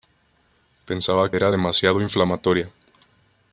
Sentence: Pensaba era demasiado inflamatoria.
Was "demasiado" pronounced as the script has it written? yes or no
yes